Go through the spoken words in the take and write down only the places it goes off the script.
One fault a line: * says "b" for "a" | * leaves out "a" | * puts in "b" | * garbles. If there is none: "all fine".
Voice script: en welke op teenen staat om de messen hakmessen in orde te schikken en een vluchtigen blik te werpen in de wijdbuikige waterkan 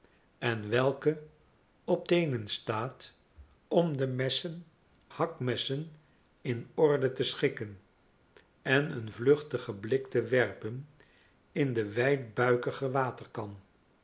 all fine